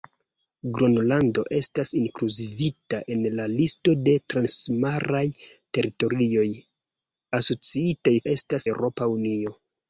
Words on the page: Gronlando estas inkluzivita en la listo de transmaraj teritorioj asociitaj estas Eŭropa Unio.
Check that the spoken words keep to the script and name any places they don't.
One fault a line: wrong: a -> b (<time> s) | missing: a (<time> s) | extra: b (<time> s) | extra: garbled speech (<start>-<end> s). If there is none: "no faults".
no faults